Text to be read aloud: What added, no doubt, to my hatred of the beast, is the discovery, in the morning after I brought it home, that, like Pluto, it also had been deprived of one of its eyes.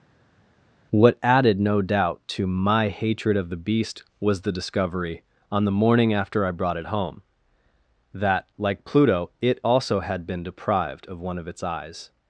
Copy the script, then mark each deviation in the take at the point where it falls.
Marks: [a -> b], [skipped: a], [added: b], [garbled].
What added, no doubt, to my hatred of the beast, [is -> was] the discovery, [in -> on] the morning after I brought it home, that, like Pluto, it also had been deprived of one of its eyes.